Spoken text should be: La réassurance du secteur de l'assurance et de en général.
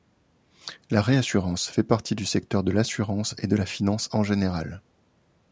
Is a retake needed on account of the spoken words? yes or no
yes